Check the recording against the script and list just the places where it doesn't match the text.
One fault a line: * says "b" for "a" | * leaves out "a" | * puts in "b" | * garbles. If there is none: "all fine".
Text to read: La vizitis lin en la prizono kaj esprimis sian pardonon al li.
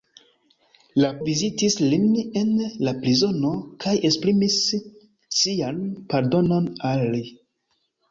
all fine